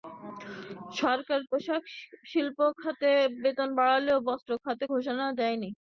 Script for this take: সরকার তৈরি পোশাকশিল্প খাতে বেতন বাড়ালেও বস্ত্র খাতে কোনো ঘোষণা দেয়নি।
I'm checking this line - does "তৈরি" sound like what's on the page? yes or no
no